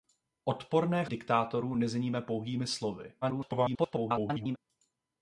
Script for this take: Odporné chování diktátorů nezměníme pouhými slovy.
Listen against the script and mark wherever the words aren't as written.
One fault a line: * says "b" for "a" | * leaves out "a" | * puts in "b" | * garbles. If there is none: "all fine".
* leaves out "chování"
* garbles